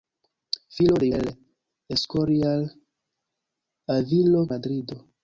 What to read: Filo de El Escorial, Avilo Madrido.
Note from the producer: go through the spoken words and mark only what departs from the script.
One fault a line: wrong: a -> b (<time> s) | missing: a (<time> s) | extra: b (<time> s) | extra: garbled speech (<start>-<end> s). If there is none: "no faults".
no faults